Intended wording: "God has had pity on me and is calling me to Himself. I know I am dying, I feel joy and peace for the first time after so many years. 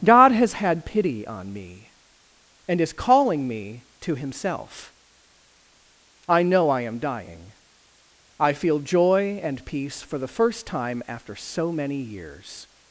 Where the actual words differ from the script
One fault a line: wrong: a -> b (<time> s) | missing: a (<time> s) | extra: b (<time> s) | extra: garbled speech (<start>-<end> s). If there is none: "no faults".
no faults